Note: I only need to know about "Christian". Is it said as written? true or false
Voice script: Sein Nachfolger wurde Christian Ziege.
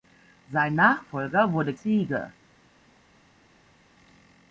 false